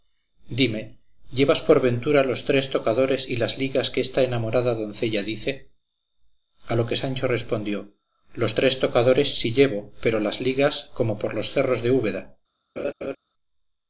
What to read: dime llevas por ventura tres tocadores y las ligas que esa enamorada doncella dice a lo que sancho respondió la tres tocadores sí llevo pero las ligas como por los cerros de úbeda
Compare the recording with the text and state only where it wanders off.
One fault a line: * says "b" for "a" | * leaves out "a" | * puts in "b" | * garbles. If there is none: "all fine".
* puts in "los"
* says "esta" for "esa"
* says "los" for "la"